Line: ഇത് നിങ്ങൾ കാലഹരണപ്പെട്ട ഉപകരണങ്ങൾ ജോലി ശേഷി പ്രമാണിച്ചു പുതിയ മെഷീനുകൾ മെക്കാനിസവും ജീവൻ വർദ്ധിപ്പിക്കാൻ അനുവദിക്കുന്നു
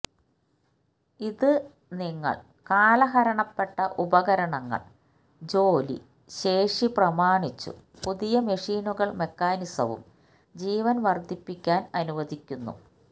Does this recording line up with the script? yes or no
yes